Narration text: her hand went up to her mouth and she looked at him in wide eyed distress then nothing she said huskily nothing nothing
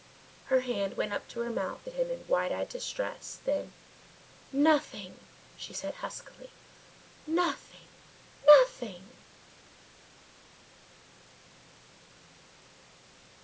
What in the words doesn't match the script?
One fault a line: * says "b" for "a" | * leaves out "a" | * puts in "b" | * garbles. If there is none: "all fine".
* leaves out "and she looked"